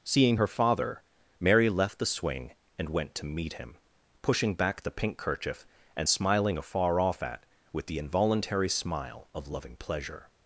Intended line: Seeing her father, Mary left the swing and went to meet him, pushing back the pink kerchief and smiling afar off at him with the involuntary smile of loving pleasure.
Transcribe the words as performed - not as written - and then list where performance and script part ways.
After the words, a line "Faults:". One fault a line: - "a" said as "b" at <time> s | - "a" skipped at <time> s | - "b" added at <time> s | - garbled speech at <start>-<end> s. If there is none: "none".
Seeing her father, Mary left the swing and went to meet him, pushing back the pink kerchief and smiling afar off at with the involuntary smile of loving pleasure.
Faults:
- "him" skipped at 7.4 s